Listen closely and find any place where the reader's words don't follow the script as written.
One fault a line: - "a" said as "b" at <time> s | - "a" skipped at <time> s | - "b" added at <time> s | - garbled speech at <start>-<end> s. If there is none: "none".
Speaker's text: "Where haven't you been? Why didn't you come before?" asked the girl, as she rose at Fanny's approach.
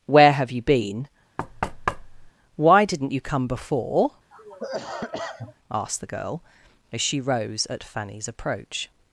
- "haven't" said as "have" at 0.3 s